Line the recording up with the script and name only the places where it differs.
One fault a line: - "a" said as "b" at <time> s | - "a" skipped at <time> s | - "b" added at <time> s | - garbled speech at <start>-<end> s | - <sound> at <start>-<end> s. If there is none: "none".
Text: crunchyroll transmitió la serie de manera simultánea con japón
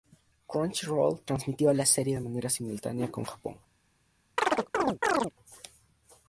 - chirp at 4.4-5.3 s